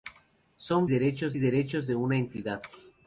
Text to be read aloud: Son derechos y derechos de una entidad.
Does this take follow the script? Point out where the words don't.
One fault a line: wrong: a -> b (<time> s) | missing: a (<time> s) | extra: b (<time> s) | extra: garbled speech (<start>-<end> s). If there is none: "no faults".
no faults